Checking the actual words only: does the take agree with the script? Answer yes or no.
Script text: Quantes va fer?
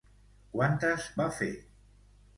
yes